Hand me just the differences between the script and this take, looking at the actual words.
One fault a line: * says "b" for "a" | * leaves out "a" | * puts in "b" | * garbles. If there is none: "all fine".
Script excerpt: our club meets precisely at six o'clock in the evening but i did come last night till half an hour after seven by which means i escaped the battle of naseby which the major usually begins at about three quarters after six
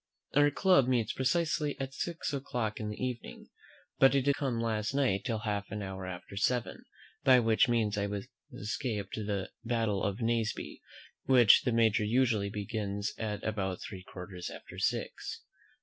all fine